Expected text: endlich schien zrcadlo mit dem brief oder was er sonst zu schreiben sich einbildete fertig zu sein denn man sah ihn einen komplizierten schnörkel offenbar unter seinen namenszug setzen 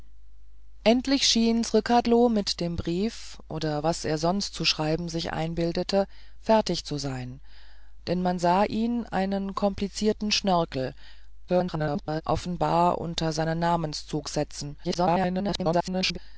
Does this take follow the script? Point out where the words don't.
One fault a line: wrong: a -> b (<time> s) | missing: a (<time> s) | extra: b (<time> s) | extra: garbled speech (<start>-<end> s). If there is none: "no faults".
extra: garbled speech (11.5-12.2 s)
extra: garbled speech (14.8-16.2 s)